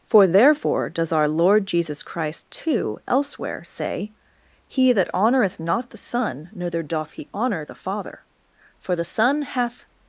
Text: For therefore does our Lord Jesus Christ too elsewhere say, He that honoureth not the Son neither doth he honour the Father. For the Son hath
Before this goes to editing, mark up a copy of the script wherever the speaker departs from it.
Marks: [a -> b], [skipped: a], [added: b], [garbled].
For therefore does our Lord Jesus Christ too elsewhere say, He that honoureth not the Son neither doth he honour the Father. For the Son hath